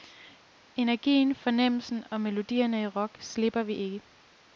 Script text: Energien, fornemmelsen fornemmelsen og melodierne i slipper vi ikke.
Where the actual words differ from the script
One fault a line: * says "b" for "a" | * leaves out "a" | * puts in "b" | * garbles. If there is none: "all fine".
* leaves out "fornemmelsen"
* puts in "rock"